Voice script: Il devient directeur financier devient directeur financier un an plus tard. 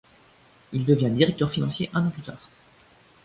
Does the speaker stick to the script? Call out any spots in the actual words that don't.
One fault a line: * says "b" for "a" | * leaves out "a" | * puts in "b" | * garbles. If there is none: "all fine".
* leaves out "devient directeur financier"